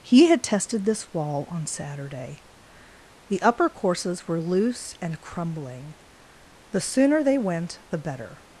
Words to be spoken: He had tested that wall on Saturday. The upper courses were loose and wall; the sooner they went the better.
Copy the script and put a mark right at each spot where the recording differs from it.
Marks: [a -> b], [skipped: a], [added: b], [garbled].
He had tested [that -> this] wall on Saturday. The upper courses were loose and [wall; -> crumbling] the sooner they went the better.